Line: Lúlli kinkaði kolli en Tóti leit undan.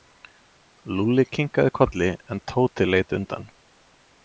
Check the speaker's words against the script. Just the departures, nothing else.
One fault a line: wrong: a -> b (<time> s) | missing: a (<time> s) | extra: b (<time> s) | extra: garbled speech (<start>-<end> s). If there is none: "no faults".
no faults